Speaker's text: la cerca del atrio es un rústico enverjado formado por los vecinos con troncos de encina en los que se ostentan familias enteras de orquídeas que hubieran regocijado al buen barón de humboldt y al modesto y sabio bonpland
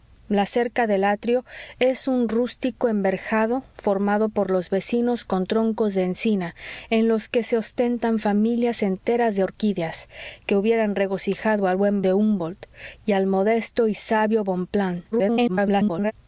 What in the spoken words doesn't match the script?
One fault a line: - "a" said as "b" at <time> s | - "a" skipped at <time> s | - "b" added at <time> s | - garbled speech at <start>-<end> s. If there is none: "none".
- "barón" skipped at 12.0 s
- garbled speech at 15.1-16.1 s